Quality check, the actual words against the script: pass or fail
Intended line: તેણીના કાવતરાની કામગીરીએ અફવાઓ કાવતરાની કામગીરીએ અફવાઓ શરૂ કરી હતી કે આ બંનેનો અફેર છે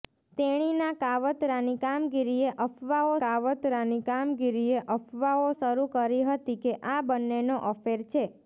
pass